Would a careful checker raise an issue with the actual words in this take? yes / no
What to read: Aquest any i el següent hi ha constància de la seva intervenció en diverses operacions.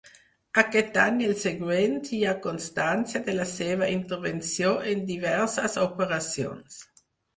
no